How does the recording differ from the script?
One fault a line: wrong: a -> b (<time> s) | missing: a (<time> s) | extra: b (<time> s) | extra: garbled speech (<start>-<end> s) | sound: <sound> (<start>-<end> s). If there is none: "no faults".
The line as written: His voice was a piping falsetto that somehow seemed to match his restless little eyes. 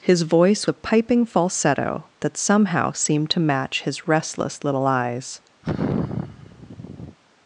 missing: was (0.7 s)
sound: sigh (5.6-7.2 s)